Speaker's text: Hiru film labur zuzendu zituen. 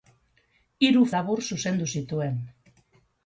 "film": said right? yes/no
no